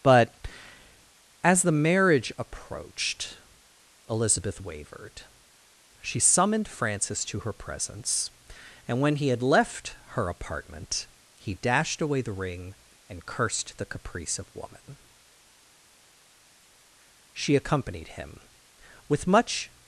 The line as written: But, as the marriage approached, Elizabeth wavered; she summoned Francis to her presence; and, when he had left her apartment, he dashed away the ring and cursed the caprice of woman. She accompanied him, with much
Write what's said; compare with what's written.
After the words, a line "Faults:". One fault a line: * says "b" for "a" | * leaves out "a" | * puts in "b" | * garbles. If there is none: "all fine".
But, as the marriage approached, Elizabeth wavered; she summoned Francis to her presence; and, when he had left her apartment, he dashed away the ring and cursed the caprice of woman. She accompanied him, with much
Faults:
all fine